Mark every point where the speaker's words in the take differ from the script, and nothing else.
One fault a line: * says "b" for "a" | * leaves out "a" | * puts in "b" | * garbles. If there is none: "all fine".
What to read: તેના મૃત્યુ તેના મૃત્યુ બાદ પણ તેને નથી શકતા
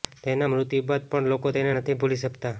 * leaves out "તેના મૃત્યુ"
* puts in "લોકો"
* puts in "ભૂલી"